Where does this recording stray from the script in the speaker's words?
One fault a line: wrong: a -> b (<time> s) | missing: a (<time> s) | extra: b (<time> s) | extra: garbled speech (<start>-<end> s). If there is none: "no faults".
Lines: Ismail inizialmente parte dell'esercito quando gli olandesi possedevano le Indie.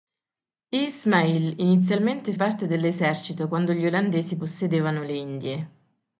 no faults